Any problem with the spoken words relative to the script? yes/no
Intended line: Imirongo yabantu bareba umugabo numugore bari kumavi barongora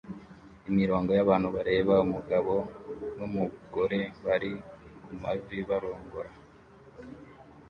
no